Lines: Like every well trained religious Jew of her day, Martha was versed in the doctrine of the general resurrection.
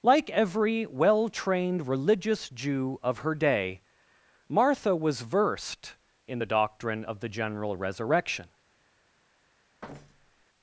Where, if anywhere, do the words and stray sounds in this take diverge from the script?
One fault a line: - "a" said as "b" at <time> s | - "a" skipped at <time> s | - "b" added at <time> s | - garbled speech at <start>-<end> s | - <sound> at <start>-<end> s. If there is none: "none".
- thud at 9.8-10.5 s